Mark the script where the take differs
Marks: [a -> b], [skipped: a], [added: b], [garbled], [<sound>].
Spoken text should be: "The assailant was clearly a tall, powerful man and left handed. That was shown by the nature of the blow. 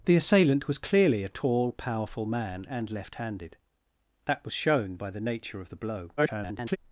"The assailant was clearly a tall, powerful man and left handed. That was shown by the nature of the blow. [garbled]